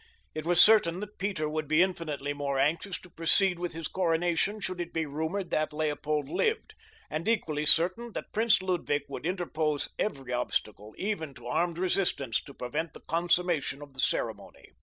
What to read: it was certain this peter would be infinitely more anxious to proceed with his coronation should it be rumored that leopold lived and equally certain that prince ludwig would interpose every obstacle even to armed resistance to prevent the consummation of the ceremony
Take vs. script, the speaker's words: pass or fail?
fail